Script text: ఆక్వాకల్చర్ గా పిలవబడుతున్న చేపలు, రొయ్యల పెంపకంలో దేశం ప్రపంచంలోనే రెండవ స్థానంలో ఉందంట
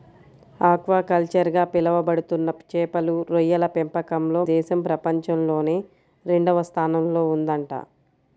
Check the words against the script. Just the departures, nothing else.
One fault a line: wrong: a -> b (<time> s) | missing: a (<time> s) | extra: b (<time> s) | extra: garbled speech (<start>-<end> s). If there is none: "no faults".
no faults